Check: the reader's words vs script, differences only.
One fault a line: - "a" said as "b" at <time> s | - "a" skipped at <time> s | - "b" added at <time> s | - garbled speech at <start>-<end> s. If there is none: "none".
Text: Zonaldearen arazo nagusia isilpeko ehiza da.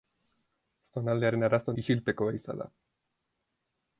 - "nagusia" skipped at 1.8 s